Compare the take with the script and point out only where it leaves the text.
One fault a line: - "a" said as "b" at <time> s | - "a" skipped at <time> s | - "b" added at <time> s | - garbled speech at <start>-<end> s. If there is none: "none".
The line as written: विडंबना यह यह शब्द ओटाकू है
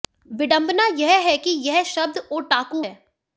- "है कि" added at 1.2 s